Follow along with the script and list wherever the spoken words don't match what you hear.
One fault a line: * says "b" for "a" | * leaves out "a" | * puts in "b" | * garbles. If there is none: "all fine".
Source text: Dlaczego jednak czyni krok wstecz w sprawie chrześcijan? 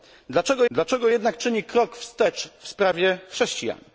* puts in "dlaczego"